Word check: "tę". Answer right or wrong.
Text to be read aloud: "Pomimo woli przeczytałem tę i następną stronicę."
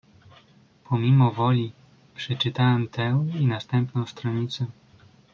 right